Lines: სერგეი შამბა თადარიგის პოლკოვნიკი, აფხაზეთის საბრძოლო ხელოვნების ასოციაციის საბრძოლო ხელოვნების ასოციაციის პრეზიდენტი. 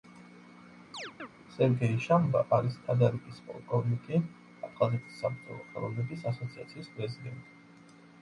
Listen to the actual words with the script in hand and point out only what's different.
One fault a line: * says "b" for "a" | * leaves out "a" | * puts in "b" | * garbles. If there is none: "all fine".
* puts in "არის"
* leaves out "საბრძოლო ხელოვნების ასოციაციის"